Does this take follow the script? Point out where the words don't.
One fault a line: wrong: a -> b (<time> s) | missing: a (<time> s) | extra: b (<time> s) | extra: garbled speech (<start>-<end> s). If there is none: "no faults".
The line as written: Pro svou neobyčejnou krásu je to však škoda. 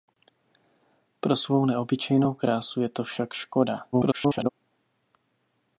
extra: garbled speech (3.9-4.5 s)